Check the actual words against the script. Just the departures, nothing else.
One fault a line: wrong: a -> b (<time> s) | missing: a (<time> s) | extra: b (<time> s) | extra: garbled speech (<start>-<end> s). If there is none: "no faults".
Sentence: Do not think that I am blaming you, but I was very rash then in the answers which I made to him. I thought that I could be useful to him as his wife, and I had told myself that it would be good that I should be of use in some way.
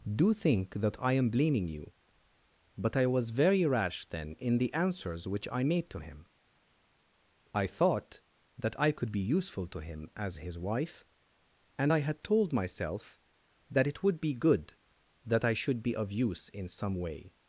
missing: not (0.3 s)